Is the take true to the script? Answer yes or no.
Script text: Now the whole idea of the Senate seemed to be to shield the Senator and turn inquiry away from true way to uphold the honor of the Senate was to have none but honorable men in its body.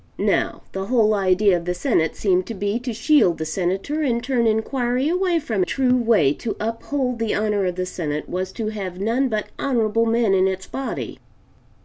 yes